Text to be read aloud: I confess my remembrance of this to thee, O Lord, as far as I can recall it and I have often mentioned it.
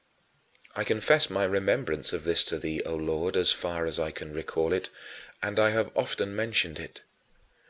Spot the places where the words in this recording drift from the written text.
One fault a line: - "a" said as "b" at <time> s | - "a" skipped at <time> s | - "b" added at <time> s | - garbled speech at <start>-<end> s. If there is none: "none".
none